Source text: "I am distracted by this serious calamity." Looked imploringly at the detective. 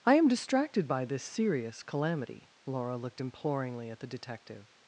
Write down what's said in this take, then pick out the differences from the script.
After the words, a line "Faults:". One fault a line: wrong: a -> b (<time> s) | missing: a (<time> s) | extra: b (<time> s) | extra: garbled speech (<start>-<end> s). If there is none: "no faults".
"I am distracted by this serious calamity." Laura looked imploringly at the detective.
Faults:
extra: Laura (2.6 s)